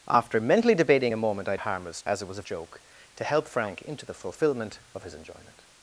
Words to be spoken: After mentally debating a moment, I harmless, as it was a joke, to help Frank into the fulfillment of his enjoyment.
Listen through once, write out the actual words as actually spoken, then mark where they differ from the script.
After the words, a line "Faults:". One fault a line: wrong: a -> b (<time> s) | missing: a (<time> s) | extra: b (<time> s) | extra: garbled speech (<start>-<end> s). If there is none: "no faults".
After mentally debating a moment, I harmless, as it was a joke, to help Frank into the fulfillment of his enjoyment.
Faults:
no faults